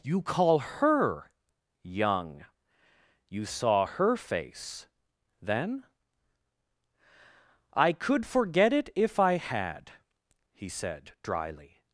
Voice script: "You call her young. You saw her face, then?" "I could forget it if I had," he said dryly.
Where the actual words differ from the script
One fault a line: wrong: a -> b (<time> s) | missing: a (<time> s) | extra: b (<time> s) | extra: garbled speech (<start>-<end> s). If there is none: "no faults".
no faults